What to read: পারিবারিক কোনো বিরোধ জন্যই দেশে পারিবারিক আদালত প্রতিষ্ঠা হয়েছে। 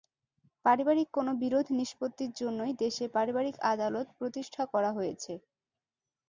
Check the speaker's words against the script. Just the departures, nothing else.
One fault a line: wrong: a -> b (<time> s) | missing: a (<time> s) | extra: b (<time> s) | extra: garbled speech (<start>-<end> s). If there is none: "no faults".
extra: নিষ্পত্তির (1.8 s)
extra: করা (4.7 s)